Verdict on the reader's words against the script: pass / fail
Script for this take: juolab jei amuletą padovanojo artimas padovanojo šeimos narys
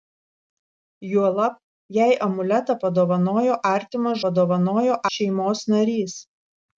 pass